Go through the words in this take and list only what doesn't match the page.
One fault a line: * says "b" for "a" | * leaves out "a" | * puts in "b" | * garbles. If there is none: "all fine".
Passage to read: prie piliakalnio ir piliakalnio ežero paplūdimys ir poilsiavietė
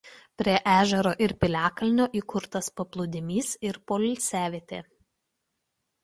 * says "ežero" for "piliakalnio"
* says "įkurtas" for "ežero"